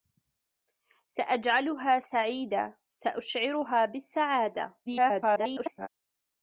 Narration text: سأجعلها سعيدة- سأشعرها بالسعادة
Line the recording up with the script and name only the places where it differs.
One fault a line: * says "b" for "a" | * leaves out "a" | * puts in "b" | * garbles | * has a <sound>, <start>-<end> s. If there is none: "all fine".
* garbles